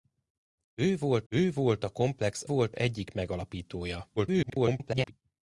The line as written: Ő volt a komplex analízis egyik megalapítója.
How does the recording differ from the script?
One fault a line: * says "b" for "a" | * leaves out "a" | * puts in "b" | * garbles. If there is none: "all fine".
* puts in "ő volt"
* says "volt" for "analízis"
* garbles